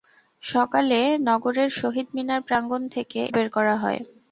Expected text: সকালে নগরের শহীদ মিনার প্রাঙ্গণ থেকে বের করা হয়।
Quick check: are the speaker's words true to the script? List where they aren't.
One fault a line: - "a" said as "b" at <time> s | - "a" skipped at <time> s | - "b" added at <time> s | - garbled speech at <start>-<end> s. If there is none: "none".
none